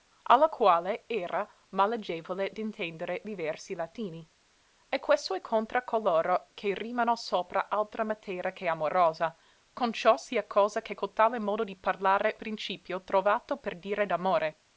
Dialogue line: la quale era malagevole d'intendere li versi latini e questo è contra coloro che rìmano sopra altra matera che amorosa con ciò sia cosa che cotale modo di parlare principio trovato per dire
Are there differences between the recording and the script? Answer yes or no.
no